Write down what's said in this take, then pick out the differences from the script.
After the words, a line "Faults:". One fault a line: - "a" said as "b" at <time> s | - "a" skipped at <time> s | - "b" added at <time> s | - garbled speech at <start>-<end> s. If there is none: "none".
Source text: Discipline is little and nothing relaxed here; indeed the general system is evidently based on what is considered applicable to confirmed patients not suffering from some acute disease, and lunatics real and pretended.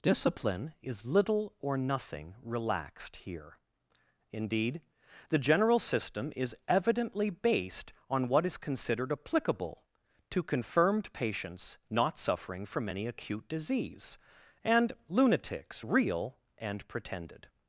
Discipline is little or nothing relaxed here; indeed the general system is evidently based on what is considered applicable to confirmed patients not suffering from any acute disease, and lunatics real and pretended.
Faults:
- "and" said as "or" at 1.6 s
- "some" said as "any" at 12.9 s